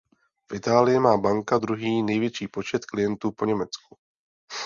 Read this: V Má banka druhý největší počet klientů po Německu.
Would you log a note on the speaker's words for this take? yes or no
yes